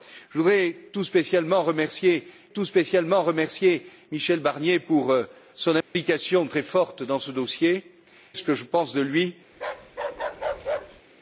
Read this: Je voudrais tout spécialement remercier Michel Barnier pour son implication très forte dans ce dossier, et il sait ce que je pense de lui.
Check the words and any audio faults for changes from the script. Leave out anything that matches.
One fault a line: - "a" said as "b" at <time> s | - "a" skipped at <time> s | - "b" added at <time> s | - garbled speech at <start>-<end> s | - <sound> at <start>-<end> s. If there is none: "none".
- "tout spécialement remercier" added at 2.5 s
- dropout at 5.8-6.0 s
- "et il sait" skipped at 7.8 s
- bark at 9.5-11.0 s